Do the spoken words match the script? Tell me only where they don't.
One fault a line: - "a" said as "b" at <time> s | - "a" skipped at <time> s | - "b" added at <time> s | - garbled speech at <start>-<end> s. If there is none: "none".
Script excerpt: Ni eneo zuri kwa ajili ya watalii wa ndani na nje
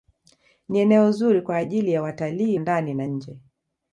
- "wa" skipped at 2.6 s